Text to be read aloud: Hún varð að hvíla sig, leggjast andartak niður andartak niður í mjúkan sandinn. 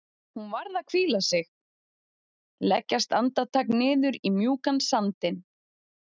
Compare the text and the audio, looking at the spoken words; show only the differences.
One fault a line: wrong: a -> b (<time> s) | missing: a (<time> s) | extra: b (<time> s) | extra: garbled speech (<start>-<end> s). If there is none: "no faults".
missing: andartak niður (4.2 s)